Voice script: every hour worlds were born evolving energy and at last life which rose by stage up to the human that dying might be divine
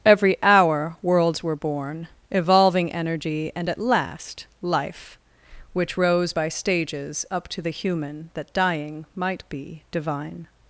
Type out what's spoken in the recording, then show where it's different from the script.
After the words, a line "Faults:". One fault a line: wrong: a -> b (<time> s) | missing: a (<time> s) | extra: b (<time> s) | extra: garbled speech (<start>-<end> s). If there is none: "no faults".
every hour worlds were born evolving energy and at last life which rose by stages up to the human that dying might be divine
Faults:
wrong: stage -> stages (6.5 s)